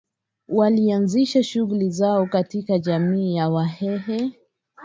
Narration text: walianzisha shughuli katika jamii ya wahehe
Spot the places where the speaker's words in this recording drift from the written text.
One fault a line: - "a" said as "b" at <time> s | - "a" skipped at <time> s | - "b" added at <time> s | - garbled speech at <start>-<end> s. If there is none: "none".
- "zao" added at 1.9 s